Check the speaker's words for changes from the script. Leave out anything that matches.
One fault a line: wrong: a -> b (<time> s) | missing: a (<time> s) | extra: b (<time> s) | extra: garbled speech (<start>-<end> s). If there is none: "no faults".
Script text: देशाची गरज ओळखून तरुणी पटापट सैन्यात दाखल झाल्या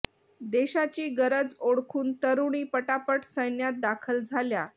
no faults